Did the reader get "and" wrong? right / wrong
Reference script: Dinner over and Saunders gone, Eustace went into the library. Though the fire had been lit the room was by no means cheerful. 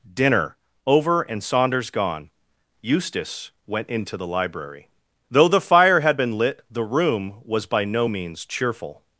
right